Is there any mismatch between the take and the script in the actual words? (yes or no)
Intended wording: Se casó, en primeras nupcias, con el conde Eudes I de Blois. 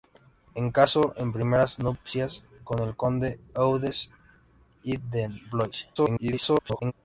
yes